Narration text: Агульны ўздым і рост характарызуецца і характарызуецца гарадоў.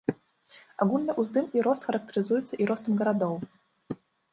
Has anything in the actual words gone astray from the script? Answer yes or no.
yes